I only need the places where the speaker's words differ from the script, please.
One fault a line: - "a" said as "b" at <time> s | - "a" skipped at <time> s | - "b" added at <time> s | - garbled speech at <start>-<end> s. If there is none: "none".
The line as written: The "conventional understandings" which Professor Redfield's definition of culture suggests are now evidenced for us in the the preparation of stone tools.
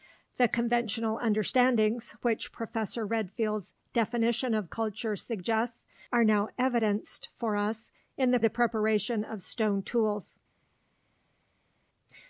none